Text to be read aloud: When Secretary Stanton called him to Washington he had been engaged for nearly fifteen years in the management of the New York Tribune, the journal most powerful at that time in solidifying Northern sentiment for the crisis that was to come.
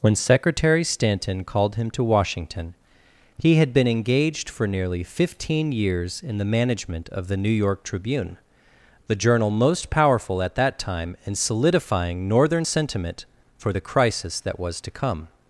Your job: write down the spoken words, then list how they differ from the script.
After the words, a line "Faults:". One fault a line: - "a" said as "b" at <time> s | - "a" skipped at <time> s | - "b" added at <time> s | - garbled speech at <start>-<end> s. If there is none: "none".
When Secretary Stanton called him to Washington he had been engaged for nearly fifteen years in the management of the New York Tribune, the journal most powerful at that time in solidifying Northern sentiment for the crisis that was to come.
Faults:
none